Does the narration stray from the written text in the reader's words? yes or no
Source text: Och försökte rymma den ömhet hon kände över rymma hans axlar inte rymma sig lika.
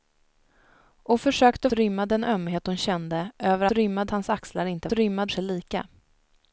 no